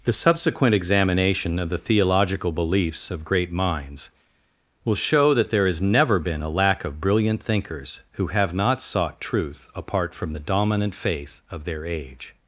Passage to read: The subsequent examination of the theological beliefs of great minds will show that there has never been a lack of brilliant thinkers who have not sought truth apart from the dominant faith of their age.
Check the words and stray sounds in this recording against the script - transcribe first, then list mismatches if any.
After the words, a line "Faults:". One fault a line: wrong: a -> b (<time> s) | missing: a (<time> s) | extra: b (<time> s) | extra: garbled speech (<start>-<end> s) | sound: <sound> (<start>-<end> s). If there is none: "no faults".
The subsequent examination of the theological beliefs of great minds will show that there has never been a lack of brilliant thinkers who have not sought truth apart from the dominant faith of their age.
Faults:
no faults